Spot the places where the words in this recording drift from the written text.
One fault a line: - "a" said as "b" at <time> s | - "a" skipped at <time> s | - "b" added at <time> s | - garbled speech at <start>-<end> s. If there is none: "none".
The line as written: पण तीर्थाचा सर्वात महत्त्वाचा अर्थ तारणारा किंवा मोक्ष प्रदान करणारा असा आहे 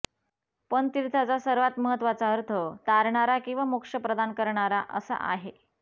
none